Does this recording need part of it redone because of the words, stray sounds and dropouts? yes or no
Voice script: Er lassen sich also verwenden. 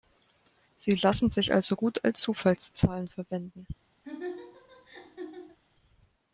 yes